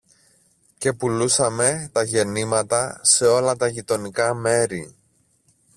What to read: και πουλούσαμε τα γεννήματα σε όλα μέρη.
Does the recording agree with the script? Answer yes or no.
no